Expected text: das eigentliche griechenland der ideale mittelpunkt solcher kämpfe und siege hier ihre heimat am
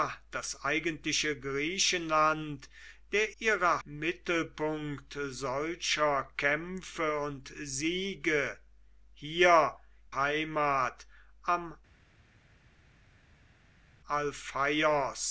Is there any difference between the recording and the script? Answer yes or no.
yes